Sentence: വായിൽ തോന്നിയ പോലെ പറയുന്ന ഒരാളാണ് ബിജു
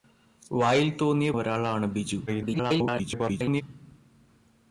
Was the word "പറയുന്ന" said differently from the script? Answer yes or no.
yes